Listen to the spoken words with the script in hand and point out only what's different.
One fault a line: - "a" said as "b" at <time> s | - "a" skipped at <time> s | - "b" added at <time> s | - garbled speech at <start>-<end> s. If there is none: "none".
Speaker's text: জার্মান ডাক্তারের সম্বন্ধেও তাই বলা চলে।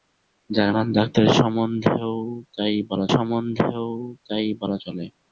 - "সম্বন্ধেও তাই বলা" added at 3.1 s